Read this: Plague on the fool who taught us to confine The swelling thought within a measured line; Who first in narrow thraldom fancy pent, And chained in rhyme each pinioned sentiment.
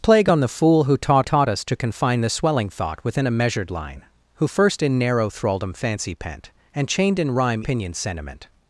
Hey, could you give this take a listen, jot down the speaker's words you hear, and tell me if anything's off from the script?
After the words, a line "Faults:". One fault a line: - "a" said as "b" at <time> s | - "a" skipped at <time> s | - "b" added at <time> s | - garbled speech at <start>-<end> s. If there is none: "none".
Plague on the fool who taught taught us to confine The swelling thought within a measured line; Who first in narrow thraldom fancy pent, And chained in rhyme pinioned sentiment.
Faults:
- "taught" added at 1.2 s
- "each" skipped at 7.6 s